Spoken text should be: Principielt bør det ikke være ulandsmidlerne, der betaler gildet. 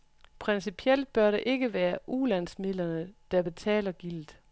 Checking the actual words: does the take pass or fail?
pass